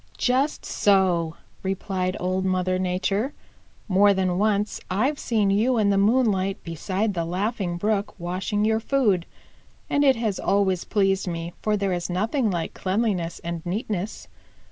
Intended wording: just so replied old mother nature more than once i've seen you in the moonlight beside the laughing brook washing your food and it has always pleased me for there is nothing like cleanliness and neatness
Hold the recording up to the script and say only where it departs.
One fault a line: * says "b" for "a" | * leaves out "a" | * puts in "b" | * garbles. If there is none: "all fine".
all fine